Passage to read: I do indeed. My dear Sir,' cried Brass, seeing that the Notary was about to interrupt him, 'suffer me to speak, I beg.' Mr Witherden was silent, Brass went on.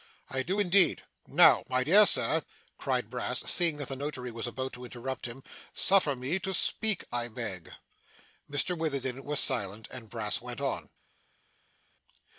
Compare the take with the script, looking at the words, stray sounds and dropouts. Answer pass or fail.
fail